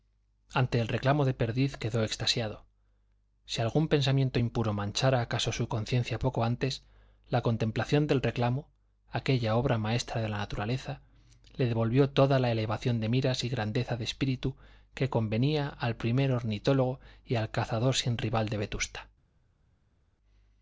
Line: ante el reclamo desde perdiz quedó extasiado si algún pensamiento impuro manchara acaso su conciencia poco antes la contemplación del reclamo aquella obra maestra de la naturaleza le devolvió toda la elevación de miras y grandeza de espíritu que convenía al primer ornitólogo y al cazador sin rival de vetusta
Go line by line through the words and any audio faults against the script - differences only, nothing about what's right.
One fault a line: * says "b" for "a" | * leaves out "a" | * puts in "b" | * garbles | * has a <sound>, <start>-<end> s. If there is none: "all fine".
* says "de" for "desde"